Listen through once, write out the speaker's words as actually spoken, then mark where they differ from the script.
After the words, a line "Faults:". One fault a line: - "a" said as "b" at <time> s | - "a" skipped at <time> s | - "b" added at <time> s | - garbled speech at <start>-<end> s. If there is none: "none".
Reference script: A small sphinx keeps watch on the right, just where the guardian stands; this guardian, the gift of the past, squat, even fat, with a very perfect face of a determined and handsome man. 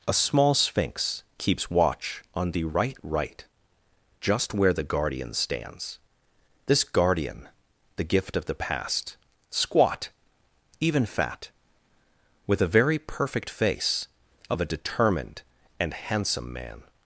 A small sphinx keeps watch on the right right, just where the guardian stands; this guardian, the gift of the past, squat, even fat, with a very perfect face of a determined and handsome man.
Faults:
- "right" added at 3.0 s